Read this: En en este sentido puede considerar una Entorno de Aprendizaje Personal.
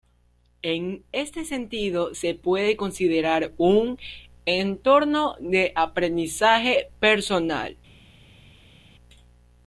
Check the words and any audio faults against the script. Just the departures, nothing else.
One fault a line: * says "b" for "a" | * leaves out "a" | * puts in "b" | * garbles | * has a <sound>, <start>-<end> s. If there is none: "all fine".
* leaves out "en"
* puts in "se"
* says "un" for "una"